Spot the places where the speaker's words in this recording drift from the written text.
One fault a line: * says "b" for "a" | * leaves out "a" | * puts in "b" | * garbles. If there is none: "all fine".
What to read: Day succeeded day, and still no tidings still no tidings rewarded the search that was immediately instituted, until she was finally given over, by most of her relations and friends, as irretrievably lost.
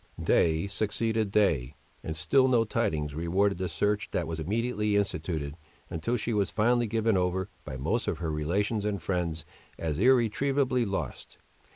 * leaves out "still no tidings"